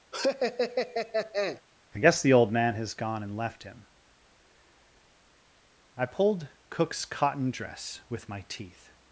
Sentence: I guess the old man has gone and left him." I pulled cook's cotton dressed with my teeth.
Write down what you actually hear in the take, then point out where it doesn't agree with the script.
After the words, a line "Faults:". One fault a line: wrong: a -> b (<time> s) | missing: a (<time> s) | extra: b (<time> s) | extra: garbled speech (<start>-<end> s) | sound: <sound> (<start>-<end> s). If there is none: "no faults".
I guess the old man has gone and left him." I pulled cook's cotton dress with my teeth.
Faults:
sound: laugh (0.1-1.6 s)
wrong: dressed -> dress (7.5 s)